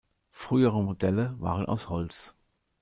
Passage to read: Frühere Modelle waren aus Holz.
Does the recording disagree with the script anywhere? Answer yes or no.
no